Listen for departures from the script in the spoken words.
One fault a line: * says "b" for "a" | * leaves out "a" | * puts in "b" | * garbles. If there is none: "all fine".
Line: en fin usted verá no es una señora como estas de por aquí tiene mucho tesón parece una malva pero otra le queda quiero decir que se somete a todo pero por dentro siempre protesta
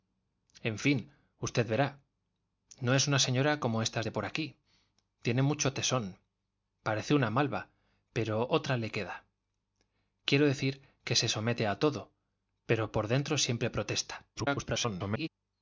* garbles